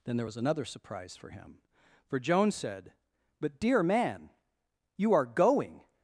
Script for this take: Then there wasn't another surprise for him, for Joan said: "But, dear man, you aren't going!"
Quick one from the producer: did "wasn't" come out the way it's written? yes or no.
no